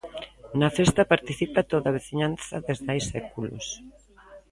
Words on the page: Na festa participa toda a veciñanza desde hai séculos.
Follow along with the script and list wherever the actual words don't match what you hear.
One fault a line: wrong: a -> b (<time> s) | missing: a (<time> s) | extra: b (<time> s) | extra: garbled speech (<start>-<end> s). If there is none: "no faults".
no faults